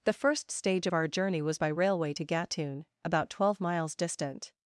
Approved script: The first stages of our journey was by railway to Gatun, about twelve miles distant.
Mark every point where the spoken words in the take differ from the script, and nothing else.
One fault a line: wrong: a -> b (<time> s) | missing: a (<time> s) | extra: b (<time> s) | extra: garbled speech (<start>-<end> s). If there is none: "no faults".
wrong: stages -> stage (0.5 s)